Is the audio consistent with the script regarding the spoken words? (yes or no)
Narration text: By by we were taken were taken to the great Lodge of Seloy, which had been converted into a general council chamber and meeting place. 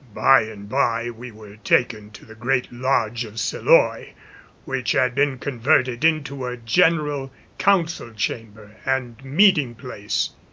no